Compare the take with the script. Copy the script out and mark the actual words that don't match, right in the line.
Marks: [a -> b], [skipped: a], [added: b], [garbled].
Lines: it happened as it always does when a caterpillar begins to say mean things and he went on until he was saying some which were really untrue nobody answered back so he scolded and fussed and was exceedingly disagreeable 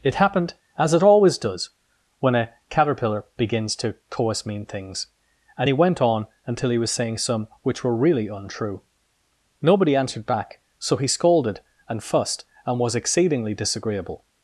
it happened as it always does when a caterpillar begins to [say -> coas] mean things and he went on until he was saying some which were really untrue nobody answered back so he scolded and fussed and was exceedingly disagreeable